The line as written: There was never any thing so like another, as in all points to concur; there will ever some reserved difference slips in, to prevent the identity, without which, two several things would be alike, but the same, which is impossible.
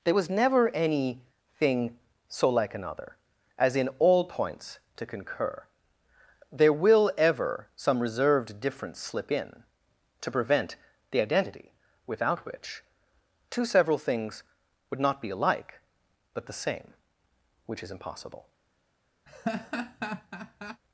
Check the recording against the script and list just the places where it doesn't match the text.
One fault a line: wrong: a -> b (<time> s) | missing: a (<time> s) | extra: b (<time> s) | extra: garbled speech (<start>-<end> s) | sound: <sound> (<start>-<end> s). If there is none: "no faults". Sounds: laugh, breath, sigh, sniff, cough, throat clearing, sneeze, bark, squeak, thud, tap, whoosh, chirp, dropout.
wrong: slips -> slip (9.0 s)
extra: not (15.0 s)
sound: laugh (19.3-20.8 s)